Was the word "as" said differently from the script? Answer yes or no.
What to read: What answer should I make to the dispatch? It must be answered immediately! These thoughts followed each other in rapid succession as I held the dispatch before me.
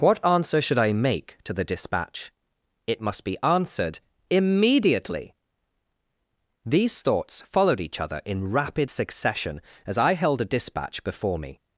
no